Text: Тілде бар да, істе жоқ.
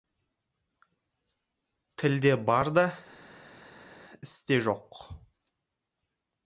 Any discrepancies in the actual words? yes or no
no